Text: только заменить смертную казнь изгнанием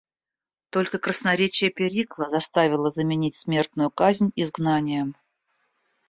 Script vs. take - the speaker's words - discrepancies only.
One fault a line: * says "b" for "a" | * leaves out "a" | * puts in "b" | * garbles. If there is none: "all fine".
* puts in "красноречие перикла заставило"